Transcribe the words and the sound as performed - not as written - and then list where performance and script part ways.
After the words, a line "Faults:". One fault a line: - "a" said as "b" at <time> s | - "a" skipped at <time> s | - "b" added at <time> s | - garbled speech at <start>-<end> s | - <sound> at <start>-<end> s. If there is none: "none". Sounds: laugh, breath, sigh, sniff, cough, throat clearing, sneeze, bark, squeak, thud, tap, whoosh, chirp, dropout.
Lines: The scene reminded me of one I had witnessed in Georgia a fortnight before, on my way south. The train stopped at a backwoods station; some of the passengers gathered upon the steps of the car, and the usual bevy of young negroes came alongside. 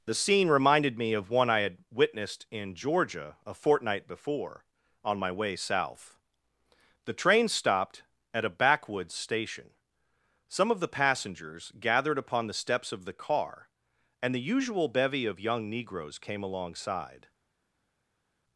The scene reminded me of one I had witnessed in Georgia a fortnight before, on my way south. The train stopped at a backwoods station; some of the passengers gathered upon the steps of the car, and the usual bevy of young negroes came alongside.
Faults:
none